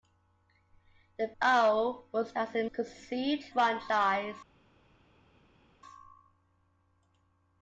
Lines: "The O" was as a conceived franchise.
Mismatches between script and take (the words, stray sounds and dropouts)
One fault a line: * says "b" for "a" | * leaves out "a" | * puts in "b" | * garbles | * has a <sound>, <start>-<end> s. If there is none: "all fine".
all fine